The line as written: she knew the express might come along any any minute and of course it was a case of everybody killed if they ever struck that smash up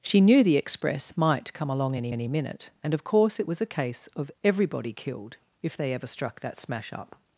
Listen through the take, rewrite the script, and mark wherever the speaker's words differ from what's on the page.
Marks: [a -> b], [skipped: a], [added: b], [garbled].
she knew the express might come along any any minute and of course it was a case of everybody killed if they ever struck that smash up